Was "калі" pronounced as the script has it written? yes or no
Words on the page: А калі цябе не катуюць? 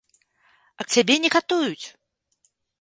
no